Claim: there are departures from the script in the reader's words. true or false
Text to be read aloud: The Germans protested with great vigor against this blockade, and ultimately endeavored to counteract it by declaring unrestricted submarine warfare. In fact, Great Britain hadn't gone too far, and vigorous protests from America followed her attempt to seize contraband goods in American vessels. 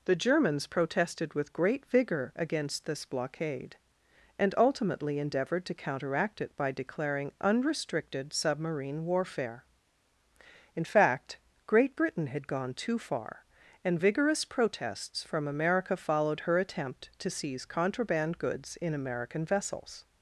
true